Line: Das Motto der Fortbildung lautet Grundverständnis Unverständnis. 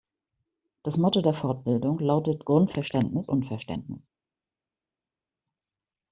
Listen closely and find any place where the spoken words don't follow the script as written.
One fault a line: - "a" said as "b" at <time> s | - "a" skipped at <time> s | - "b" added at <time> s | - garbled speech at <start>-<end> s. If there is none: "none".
none